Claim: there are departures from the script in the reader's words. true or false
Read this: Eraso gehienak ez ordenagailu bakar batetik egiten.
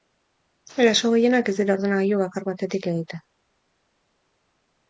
true